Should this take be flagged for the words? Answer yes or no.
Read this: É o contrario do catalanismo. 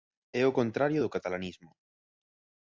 no